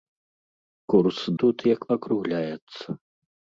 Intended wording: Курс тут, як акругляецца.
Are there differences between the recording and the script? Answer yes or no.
no